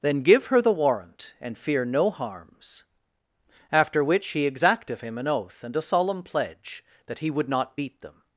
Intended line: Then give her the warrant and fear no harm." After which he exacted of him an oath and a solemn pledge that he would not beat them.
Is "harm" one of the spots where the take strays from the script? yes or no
yes